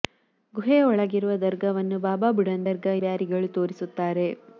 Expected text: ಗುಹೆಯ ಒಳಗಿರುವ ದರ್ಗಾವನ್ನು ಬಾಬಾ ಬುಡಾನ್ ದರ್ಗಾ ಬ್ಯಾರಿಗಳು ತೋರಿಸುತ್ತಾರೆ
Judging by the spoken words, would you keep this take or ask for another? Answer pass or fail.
pass